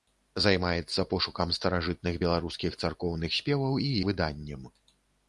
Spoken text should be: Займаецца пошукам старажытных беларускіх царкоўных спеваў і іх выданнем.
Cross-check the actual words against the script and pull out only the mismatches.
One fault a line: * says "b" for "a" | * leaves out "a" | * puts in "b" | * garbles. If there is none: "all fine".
* leaves out "іх"